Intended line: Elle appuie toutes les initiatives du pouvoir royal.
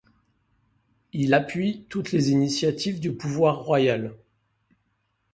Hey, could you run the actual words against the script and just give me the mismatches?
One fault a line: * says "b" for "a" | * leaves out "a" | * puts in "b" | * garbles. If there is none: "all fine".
* says "Il" for "Elle"